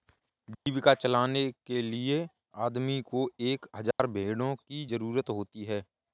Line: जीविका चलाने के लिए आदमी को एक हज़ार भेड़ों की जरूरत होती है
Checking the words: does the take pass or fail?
pass